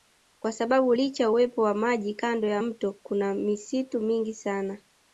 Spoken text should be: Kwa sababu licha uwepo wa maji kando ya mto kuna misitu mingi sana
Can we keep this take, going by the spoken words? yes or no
yes